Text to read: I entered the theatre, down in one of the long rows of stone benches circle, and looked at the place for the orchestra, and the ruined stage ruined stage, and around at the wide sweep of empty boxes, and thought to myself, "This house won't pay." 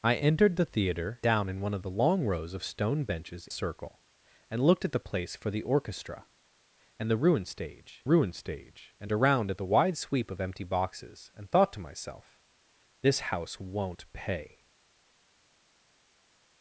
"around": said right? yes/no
yes